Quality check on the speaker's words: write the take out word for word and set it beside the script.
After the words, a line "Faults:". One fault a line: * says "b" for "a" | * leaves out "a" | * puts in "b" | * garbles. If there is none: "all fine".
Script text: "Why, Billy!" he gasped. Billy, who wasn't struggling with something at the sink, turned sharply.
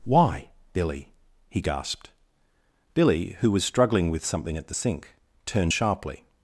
"Why, Billy!" he gasped. Billy, who was struggling with something at the sink, turned sharply.
Faults:
* says "was" for "wasn't"